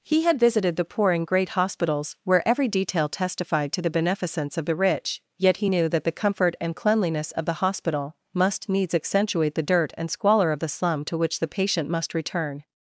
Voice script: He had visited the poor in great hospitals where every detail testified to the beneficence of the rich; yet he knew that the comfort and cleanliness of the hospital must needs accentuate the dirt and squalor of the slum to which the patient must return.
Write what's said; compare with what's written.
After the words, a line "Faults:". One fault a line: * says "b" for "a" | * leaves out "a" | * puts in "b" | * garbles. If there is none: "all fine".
He had visited the poor in great hospitals where every detail testified to the beneficence of the rich; yet he knew that the comfort and cleanliness of the hospital must needs accentuate the dirt and squalor of the slum to which the patient must return.
Faults:
all fine